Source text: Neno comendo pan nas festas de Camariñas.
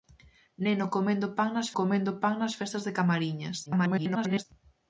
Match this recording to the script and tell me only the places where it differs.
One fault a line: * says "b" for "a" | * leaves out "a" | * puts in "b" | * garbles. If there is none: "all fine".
* puts in "comendo pan nas"
* garbles